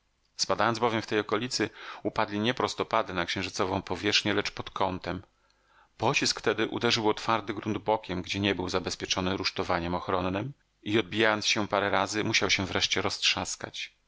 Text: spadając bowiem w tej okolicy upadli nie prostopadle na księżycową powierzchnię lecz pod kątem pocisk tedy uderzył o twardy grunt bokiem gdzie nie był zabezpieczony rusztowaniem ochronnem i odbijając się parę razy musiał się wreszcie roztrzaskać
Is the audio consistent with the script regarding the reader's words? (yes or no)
yes